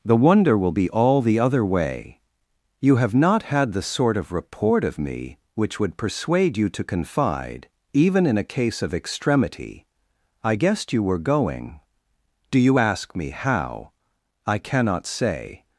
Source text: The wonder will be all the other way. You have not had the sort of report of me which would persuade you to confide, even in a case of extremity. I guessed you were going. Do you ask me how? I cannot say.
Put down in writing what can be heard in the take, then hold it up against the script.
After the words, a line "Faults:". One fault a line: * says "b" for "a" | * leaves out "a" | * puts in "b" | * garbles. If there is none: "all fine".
The wonder will be all the other way. You have not had the sort of report of me which would persuade you to confide, even in a case of extremity. I guessed you were going. Do you ask me how? I cannot say.
Faults:
all fine